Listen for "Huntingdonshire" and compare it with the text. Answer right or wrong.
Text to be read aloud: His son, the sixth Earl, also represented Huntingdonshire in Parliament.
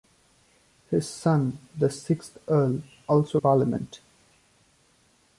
wrong